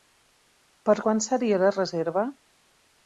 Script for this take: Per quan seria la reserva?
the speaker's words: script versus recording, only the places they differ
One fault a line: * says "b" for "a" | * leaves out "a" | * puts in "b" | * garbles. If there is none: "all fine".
all fine